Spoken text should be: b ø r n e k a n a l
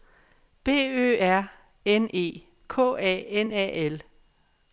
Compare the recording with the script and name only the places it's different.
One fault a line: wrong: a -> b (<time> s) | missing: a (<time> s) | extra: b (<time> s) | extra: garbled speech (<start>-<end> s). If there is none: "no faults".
no faults